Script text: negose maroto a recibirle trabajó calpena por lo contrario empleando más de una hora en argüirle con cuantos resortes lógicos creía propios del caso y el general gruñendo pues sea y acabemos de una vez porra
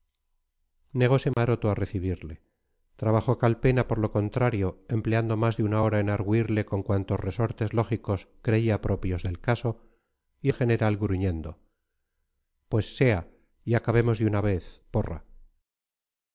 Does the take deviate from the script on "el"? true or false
false